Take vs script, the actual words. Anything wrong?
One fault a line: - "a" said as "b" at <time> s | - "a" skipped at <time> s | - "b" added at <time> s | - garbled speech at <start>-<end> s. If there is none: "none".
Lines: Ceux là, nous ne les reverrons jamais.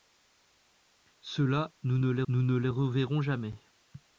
- "nous ne les" added at 2.3 s